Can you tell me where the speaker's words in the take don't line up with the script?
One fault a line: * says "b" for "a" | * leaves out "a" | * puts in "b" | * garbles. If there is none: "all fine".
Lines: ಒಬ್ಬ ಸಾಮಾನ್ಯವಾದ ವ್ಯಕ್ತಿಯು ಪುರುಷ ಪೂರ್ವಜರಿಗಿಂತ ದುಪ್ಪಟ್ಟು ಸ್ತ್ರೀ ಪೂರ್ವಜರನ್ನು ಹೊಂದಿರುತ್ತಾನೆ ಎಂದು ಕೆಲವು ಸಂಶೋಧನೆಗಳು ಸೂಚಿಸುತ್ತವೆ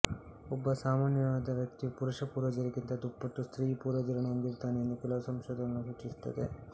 all fine